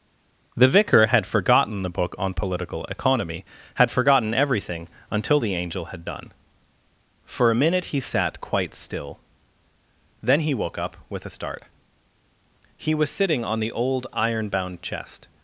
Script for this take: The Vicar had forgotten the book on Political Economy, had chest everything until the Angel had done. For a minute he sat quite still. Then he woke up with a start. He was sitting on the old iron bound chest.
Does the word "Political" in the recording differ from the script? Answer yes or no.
no